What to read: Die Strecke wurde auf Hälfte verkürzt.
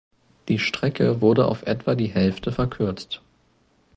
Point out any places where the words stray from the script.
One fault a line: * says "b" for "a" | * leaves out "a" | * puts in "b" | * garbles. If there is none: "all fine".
* puts in "etwa die"